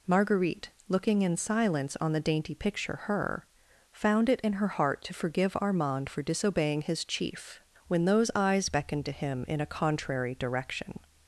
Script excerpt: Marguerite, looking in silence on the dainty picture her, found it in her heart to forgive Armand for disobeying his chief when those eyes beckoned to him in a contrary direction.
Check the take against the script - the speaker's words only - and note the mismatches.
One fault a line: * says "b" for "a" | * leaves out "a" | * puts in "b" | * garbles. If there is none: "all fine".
all fine